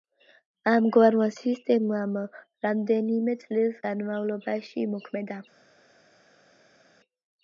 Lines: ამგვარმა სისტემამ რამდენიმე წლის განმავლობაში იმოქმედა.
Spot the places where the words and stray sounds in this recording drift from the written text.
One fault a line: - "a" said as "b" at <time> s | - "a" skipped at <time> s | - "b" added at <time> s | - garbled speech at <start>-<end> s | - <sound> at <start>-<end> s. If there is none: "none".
none